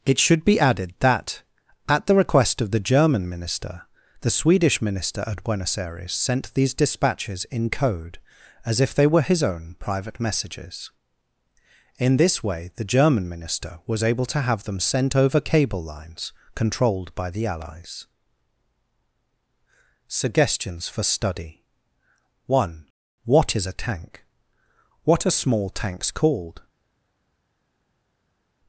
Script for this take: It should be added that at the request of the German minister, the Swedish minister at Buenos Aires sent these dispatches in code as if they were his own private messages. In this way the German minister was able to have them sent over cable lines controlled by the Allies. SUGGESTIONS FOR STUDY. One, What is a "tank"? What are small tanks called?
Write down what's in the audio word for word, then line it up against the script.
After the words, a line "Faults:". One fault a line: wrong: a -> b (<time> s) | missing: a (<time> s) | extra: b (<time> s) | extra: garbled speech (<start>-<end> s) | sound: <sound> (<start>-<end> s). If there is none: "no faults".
It should be added that at the request of the German minister, the Swedish minister at Buenos Aires sent these dispatches in code as if they were his own private messages. In this way the German minister was able to have them sent over cable lines controlled by the Allies. SUGGESTIONS FOR STUDY. One, What is a "tank"? What are small tanks called?
Faults:
no faults